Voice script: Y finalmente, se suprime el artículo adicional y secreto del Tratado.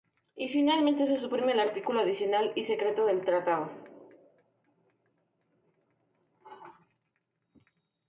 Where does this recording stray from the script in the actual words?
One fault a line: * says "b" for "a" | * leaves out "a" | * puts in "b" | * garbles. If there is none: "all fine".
all fine